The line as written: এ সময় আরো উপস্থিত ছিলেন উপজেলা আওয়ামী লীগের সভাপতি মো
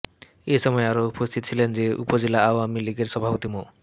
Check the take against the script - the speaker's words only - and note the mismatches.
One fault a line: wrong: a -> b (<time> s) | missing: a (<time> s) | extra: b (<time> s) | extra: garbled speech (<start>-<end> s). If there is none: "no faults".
no faults